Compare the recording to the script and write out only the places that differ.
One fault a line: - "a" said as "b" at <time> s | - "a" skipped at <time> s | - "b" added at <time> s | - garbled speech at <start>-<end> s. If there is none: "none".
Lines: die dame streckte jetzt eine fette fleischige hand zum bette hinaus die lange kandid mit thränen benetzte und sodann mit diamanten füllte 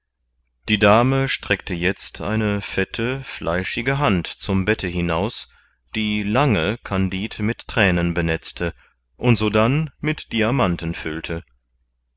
none